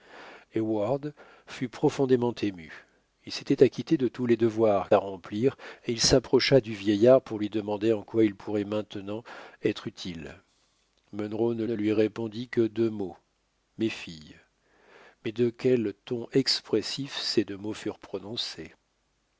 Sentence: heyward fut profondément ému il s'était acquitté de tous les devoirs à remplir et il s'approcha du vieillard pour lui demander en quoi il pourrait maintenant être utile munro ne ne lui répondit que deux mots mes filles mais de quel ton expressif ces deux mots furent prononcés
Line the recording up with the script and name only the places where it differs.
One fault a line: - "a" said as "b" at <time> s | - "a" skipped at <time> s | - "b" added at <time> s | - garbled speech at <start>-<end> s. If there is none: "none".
none